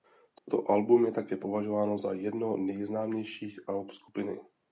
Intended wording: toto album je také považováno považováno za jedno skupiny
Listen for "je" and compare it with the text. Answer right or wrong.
right